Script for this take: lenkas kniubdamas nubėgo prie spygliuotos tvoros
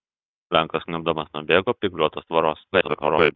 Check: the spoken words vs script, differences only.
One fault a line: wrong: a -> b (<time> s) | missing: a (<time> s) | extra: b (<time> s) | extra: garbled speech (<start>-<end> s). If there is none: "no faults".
missing: prie (1.8 s)
extra: garbled speech (2.7-3.3 s)